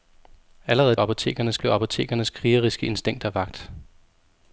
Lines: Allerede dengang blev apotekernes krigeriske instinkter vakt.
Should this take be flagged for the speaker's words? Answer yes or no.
yes